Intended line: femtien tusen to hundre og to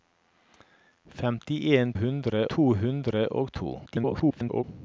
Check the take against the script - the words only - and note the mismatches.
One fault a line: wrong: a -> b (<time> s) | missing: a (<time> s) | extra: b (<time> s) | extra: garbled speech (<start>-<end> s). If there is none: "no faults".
wrong: tusen -> hundre (1.9 s)
extra: garbled speech (3.9-4.6 s)